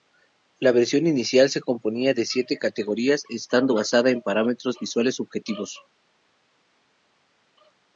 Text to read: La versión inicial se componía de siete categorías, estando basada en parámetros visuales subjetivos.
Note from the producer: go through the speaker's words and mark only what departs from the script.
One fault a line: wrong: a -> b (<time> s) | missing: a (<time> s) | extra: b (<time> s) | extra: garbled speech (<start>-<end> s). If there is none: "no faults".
no faults